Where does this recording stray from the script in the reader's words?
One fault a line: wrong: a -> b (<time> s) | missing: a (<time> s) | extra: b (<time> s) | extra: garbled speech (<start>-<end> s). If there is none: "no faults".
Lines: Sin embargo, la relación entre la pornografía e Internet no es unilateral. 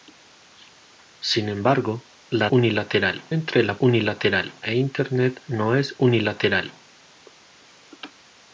wrong: relación -> unilateral (2.5 s)
wrong: pornografía -> unilateral (3.8 s)